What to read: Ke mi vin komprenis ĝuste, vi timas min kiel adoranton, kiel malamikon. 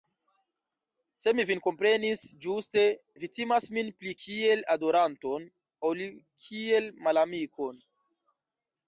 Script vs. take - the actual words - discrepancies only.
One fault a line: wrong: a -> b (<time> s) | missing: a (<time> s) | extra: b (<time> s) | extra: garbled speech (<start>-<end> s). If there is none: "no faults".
wrong: Ke -> Se (1.2 s)
extra: pli (4.0 s)
extra: ol (5.9 s)